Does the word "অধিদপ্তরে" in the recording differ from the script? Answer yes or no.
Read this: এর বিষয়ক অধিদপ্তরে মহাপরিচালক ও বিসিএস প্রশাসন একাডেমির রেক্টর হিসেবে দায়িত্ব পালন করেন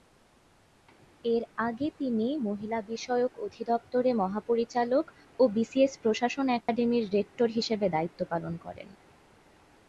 no